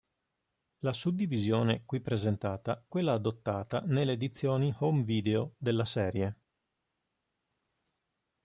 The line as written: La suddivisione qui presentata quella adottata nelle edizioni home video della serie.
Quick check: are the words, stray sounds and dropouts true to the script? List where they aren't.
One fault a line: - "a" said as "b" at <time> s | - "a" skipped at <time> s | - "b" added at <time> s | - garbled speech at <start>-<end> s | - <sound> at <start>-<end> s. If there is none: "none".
none